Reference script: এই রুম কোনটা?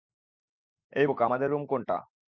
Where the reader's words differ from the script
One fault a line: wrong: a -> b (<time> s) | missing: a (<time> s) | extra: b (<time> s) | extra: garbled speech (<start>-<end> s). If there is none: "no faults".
extra: বোকা আমাদের (1.0 s)